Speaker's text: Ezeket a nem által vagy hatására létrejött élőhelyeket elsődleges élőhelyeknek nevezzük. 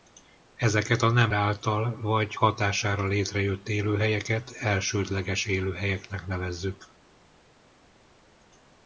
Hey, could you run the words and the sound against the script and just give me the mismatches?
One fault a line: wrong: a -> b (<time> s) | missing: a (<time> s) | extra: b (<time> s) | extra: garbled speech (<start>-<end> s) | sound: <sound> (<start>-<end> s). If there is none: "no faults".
no faults